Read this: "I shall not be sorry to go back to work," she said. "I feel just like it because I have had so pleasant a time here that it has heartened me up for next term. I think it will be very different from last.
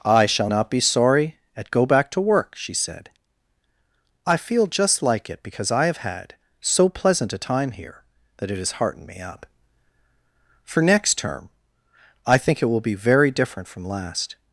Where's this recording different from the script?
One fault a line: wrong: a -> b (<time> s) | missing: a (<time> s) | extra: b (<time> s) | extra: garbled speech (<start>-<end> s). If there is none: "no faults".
wrong: to -> at (1.6 s)